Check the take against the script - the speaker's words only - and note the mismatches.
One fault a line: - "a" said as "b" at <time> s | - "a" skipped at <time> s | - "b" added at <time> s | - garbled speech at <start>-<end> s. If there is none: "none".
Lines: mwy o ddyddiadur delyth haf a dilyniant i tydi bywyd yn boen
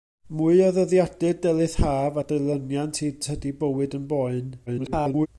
- garbled speech at 4.7-5.3 s